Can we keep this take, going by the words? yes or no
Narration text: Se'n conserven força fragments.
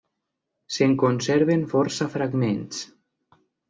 yes